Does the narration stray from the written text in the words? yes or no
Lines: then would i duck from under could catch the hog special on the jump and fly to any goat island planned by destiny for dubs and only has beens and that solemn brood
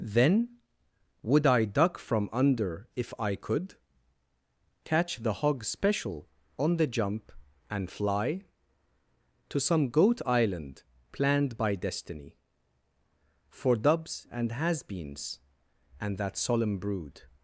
yes